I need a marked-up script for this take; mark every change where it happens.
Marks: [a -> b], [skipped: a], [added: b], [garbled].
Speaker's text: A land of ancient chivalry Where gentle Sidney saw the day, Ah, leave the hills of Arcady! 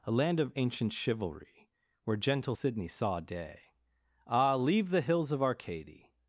A land of ancient chivalry Where gentle Sidney saw [skipped: the] day, Ah, leave the hills of Arcady!